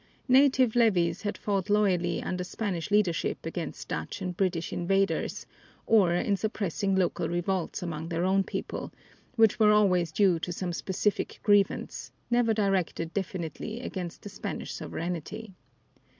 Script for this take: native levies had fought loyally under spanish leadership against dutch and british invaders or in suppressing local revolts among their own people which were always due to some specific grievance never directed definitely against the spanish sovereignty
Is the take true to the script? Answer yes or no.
yes